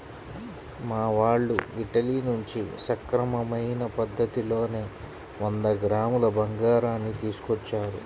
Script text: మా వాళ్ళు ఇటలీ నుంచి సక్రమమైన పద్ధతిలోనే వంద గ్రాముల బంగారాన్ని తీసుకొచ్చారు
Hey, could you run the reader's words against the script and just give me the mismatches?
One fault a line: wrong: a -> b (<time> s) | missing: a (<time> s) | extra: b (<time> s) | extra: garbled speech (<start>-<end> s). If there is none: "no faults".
no faults